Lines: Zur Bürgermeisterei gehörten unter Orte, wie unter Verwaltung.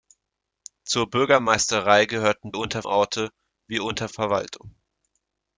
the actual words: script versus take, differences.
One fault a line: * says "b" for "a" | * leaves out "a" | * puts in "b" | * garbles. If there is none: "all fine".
all fine